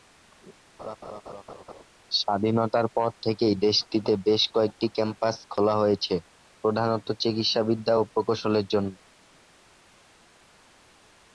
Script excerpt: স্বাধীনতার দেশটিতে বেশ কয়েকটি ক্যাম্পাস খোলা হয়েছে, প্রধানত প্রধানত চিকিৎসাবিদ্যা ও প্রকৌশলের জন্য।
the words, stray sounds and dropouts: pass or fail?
fail